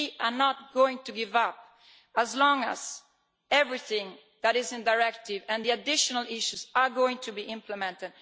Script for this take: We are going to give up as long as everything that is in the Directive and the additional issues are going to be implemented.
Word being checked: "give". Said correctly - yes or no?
yes